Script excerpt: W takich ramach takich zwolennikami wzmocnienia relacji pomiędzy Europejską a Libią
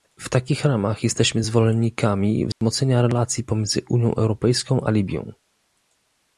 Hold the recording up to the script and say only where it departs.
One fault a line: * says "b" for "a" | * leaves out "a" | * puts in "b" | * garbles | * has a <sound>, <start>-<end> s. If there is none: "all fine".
* says "jesteśmy" for "takich"
* has a dropout, 2.5-2.6 s
* puts in "Unią"